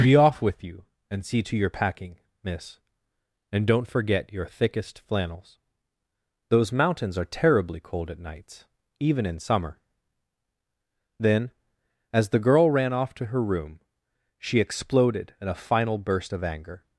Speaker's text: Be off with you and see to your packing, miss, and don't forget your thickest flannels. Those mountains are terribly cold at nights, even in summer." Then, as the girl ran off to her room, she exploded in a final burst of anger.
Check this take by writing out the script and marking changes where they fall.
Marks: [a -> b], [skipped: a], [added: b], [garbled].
Be off with you and see to your packing, miss, and don't forget your thickest flannels. Those mountains are terribly cold at nights, even in summer." Then, as the girl ran off to her room, she exploded in a final burst of anger.